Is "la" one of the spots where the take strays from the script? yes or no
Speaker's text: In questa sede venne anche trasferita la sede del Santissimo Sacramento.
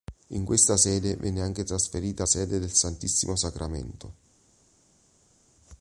yes